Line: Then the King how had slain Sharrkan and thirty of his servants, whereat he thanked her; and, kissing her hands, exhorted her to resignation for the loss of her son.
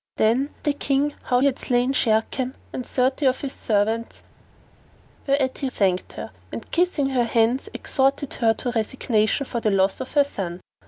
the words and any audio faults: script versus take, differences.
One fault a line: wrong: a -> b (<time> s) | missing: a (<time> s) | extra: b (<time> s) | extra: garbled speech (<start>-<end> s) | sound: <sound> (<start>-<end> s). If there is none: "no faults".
no faults